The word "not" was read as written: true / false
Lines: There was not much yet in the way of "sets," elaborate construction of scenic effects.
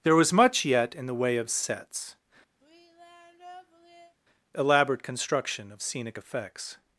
false